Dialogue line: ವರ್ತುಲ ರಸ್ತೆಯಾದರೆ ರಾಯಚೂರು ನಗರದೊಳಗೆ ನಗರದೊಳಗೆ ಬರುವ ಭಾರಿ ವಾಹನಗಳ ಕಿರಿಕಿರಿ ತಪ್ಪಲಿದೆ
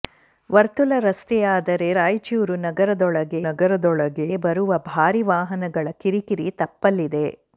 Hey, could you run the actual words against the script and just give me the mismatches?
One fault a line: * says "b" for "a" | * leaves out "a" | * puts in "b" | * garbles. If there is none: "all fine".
all fine